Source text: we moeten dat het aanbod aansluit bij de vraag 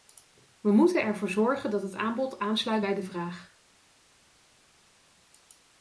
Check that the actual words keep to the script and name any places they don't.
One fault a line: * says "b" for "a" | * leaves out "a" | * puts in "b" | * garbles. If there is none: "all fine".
* puts in "ervoor zorgen"